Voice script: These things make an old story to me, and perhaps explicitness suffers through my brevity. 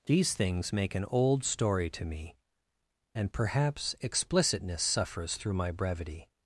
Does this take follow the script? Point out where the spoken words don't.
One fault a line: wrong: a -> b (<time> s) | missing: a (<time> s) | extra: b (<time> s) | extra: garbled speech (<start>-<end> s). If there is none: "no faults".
no faults